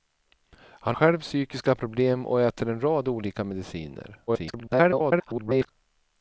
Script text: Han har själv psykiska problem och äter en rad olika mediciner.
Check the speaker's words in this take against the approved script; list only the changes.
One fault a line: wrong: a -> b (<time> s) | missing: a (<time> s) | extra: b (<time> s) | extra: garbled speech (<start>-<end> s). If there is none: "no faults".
missing: har (1.0 s)
extra: garbled speech (4.3-5.7 s)